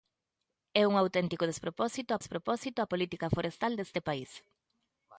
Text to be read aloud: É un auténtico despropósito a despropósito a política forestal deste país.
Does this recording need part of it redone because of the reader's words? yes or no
no